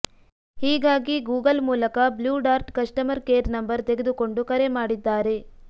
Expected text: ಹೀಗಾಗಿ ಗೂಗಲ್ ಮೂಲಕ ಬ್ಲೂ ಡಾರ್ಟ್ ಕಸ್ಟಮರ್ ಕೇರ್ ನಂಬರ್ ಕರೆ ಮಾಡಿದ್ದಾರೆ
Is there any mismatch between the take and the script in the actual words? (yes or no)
yes